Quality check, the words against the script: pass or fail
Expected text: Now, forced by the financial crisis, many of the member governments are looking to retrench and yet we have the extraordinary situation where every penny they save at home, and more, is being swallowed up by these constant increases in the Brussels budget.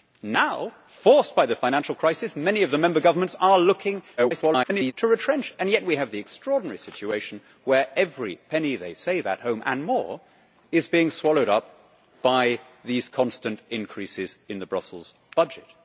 fail